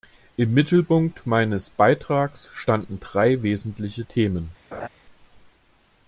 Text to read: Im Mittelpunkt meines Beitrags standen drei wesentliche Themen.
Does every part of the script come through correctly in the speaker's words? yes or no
yes